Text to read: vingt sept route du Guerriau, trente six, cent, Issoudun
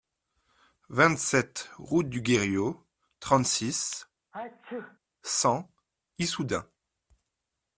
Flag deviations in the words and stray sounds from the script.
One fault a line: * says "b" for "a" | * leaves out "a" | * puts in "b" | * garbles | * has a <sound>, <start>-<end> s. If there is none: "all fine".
* has a sneeze, 4.3-5.0 s